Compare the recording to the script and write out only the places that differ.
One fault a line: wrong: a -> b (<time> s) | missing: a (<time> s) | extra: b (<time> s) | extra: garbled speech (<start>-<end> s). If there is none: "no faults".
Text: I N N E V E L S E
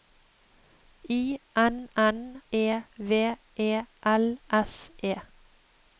no faults